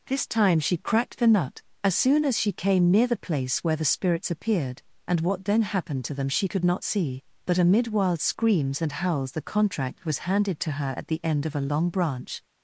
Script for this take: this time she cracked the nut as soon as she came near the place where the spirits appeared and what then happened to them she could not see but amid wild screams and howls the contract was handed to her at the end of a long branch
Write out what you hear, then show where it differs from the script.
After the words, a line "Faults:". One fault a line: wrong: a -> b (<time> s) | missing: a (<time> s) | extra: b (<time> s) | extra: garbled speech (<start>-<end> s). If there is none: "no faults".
this time she cracked the nut as soon as she came near the place where the spirits appeared and what then happened to them she could not see but amid wild screams and howls the contract was handed to her at the end of a long branch
Faults:
no faults